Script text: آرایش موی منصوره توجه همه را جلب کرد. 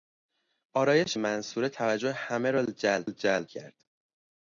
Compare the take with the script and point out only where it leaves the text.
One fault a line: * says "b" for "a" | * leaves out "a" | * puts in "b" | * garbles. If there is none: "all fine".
* leaves out "موی"
* puts in "جلب"